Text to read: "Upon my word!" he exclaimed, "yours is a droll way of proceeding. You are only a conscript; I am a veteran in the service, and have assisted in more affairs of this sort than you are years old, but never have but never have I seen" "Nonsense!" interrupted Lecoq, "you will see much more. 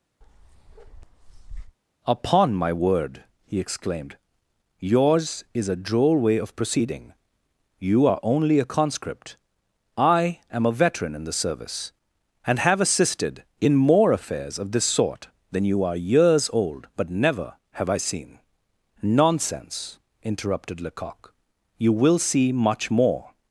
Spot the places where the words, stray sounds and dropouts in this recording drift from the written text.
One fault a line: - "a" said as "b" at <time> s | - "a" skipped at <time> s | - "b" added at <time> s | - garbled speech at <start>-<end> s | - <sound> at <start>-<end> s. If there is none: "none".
- bark at 0.2-1.8 s
- "but never have" skipped at 17.9 s